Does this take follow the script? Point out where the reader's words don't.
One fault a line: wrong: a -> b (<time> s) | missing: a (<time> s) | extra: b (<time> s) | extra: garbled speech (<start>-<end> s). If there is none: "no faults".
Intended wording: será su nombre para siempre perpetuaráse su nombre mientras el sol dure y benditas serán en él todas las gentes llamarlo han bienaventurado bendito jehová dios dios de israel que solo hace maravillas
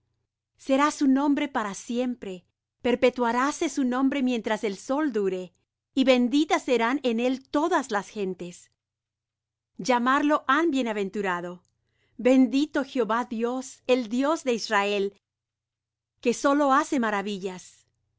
extra: el (13.9 s)